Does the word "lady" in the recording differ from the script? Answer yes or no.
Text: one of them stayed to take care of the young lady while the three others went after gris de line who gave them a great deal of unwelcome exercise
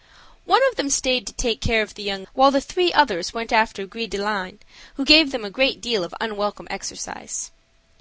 yes